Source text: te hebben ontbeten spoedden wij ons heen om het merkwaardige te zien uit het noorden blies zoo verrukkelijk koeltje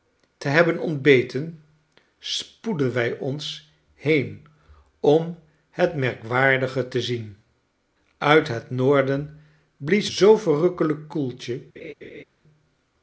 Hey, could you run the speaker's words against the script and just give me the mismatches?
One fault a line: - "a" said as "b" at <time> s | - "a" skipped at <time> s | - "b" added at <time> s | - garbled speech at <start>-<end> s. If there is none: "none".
none